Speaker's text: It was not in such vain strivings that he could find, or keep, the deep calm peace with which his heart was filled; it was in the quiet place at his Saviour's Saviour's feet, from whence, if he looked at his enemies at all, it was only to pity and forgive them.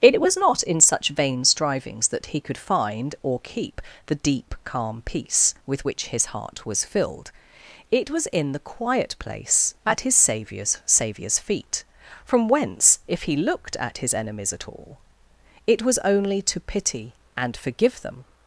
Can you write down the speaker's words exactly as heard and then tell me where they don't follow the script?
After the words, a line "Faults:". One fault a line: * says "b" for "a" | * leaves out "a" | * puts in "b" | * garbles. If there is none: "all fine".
It was not in such vain strivings that he could find, or keep, the deep calm peace with which his heart was filled; it was in the quiet place at his Saviour's Saviour's feet, from whence, if he looked at his enemies at all, it was only to pity and forgive them.
Faults:
all fine